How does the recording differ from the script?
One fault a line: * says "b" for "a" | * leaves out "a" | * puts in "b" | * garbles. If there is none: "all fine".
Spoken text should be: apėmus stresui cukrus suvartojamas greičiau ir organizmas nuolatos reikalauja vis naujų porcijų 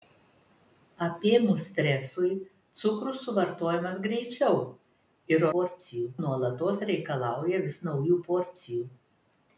* says "porcijų" for "organizmas"